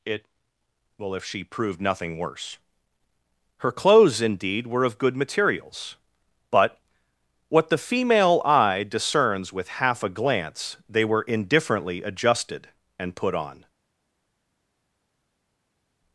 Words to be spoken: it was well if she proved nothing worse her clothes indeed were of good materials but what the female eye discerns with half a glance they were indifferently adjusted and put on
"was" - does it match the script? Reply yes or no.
no